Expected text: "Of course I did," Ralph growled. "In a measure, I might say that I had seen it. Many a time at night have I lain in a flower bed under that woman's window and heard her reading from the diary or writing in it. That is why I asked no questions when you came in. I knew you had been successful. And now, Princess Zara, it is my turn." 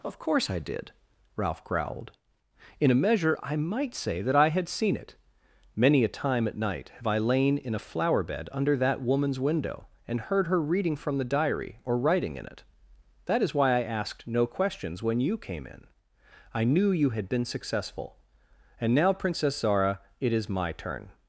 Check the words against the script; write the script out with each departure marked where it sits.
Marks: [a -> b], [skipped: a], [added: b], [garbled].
"Of course I did," Ralph growled. "In a measure, I might say that I had seen it. Many a time at night have I lain in a flower bed under that woman's window and heard her reading from the diary or writing in it. That is why I asked no questions when you came in. I knew you had been successful. And now, Princess Zara, it is my turn."